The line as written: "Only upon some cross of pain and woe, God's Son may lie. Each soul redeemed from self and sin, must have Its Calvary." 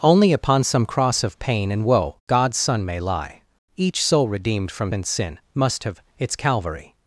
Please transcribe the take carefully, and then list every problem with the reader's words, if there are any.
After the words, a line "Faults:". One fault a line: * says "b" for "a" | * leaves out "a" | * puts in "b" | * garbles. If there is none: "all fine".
"Only upon some cross of pain and woe, God's Son may lie. Each soul redeemed from and sin, must have Its Calvary."
Faults:
* leaves out "self"